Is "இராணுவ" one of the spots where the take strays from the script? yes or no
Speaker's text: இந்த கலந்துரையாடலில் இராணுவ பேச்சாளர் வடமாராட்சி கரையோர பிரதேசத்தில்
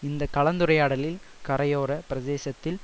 yes